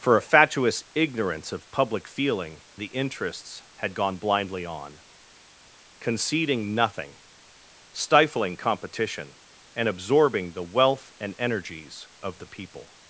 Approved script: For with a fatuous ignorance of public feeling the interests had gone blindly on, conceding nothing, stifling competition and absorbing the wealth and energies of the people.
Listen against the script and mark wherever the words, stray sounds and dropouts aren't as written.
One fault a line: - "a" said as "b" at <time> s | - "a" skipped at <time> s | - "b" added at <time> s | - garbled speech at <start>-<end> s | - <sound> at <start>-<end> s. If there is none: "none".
- "with" skipped at 0.2 s